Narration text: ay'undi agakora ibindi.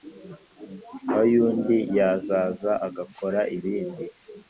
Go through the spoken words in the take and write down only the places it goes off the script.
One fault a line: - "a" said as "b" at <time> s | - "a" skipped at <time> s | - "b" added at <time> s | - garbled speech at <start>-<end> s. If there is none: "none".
- "yazaza" added at 2.0 s